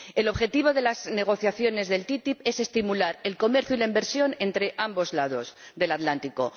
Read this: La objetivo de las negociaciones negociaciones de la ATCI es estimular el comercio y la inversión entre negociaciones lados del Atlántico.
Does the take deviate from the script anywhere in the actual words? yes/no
yes